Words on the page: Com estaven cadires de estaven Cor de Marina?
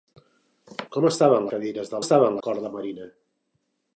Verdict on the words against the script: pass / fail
pass